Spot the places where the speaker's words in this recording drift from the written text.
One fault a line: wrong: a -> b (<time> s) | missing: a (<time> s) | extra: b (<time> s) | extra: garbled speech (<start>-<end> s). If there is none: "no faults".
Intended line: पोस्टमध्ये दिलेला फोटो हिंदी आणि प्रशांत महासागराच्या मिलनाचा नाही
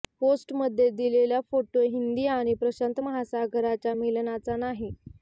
no faults